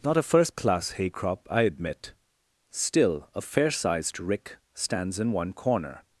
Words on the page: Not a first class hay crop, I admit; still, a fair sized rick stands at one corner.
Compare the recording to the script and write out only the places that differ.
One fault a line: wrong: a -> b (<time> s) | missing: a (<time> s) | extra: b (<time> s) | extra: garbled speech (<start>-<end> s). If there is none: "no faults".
wrong: at -> in (5.2 s)